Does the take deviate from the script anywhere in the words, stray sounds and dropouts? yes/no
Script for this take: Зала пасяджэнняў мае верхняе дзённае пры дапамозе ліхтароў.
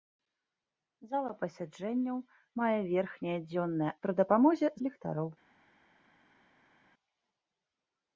no